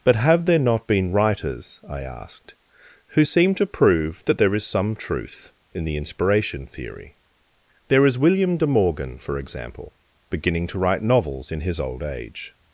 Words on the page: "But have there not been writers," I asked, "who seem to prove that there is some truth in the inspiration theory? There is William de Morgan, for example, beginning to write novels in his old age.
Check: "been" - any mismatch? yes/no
no